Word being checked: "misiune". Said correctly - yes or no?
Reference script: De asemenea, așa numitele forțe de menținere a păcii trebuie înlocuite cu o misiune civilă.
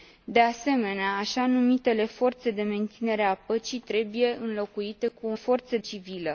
no